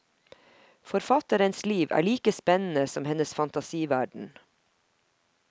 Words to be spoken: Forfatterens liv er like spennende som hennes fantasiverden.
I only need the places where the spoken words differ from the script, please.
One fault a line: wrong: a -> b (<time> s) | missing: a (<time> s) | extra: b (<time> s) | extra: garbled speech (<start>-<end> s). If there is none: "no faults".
no faults